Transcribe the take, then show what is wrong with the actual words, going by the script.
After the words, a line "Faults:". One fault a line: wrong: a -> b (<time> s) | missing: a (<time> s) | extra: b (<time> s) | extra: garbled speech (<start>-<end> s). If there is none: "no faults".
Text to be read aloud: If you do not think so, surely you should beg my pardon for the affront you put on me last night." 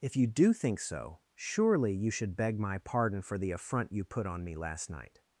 If you do think so, surely you should beg my pardon for the affront you put on me last night."
Faults:
missing: not (0.5 s)